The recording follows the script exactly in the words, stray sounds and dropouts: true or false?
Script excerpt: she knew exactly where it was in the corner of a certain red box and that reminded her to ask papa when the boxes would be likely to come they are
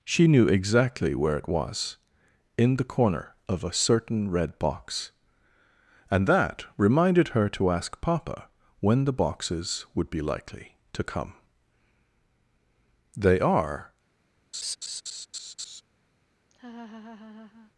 false